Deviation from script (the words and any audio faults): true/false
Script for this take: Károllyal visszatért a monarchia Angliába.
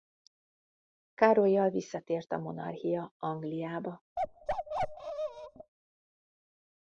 true